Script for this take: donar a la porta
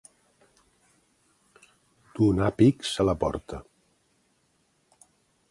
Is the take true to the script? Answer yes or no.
no